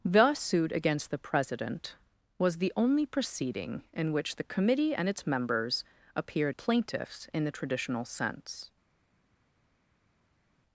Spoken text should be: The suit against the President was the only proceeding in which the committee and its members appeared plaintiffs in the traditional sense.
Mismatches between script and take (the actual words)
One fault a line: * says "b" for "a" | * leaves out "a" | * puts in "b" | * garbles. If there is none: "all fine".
all fine